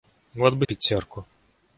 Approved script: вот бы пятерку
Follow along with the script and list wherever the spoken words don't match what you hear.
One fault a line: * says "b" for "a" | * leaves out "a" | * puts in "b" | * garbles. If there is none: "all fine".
all fine